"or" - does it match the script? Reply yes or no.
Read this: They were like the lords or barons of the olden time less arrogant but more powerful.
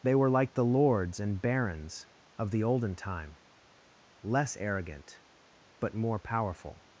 no